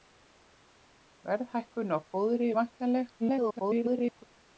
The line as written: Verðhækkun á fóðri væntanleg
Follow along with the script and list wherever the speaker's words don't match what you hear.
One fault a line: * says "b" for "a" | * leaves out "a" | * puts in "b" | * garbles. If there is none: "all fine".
* garbles